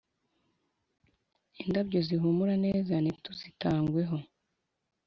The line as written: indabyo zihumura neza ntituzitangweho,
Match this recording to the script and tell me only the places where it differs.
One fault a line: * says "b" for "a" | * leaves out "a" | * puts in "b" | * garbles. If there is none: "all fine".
all fine